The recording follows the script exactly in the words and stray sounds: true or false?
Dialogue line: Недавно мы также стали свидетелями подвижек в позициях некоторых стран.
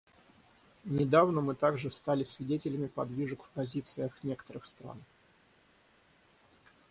true